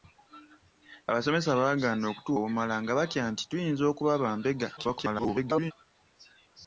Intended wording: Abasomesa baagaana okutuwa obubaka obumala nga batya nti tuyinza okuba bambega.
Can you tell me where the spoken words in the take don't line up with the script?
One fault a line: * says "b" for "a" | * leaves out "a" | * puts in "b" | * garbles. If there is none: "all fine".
* leaves out "obubaka"
* garbles